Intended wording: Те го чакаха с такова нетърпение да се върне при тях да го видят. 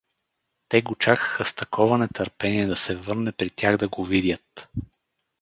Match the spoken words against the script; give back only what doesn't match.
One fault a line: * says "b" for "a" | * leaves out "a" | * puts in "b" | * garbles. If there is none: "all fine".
all fine